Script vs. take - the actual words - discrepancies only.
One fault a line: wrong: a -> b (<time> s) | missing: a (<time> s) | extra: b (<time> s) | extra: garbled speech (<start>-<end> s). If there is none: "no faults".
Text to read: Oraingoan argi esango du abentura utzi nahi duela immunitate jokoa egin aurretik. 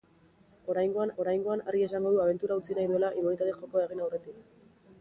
extra: oraingoan (1.2 s)